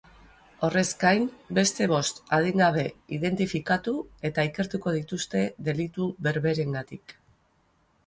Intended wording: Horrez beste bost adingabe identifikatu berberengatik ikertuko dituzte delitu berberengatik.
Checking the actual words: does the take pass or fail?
fail